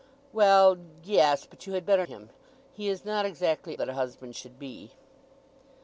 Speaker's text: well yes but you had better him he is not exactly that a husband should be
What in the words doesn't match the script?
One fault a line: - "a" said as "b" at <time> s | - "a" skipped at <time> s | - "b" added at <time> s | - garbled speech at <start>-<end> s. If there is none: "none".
none